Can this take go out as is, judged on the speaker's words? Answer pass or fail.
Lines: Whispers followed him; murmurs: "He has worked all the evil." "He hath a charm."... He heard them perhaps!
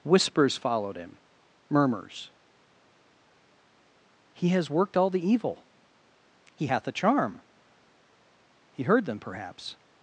pass